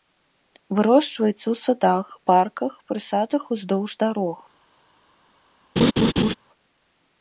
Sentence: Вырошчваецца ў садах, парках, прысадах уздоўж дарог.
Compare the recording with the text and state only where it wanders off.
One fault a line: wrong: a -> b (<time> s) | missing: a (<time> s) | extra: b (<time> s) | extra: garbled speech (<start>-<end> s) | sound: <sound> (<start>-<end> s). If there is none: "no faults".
sound: laugh (5.8-6.3 s)